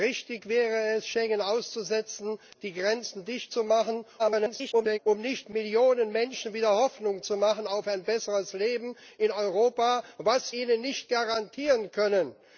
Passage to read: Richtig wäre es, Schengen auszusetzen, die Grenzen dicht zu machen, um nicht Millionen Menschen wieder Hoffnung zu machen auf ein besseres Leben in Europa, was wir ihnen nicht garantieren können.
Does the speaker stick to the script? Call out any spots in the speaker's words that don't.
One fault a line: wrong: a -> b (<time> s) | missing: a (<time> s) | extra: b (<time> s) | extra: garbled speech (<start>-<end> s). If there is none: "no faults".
extra: garbled speech (4.2-5.0 s)
missing: wir (10.5 s)